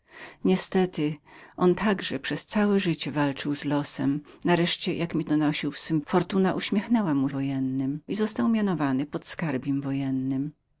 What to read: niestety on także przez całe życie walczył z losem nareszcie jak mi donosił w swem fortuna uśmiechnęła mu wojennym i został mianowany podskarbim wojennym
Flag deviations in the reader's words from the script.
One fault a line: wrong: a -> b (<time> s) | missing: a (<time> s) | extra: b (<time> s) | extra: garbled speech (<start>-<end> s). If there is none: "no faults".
no faults